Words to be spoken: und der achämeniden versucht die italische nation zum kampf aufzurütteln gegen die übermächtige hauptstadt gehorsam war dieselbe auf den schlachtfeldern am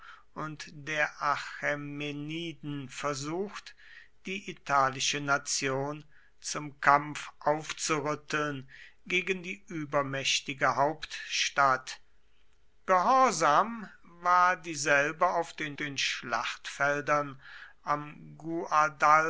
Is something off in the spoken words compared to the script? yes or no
yes